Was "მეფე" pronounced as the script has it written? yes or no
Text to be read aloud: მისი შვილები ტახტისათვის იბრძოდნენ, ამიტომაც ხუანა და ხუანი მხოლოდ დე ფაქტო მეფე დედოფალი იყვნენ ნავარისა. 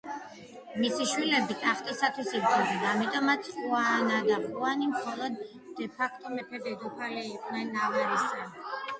yes